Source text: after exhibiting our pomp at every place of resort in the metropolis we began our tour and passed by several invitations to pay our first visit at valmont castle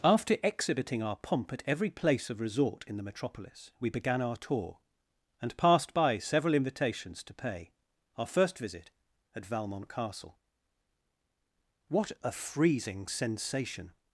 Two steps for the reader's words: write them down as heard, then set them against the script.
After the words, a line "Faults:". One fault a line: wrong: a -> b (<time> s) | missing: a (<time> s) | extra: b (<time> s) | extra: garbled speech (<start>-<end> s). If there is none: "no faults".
after exhibiting our pomp at every place of resort in the metropolis we began our tour and passed by several invitations to pay our first visit at valmont castle what a freezing sensation
Faults:
extra: what a freezing sensation (11.9 s)